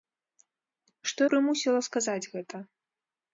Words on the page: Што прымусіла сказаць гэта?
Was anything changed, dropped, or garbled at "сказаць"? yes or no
no